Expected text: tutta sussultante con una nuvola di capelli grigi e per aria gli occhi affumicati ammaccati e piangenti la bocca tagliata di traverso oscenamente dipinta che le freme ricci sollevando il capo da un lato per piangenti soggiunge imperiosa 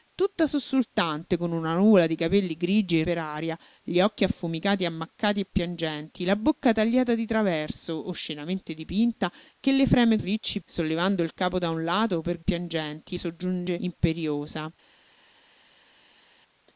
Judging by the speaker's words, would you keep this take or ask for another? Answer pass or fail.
pass